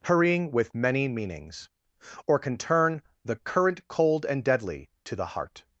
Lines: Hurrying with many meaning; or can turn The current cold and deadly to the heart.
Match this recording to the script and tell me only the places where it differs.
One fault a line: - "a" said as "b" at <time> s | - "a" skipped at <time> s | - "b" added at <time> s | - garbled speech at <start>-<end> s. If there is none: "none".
- "meaning" said as "meanings" at 1.1 s